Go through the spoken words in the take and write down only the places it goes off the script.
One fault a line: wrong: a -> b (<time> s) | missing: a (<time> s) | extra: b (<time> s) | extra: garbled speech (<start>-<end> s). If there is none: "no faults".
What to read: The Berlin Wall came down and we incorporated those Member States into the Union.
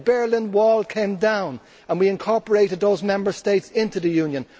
no faults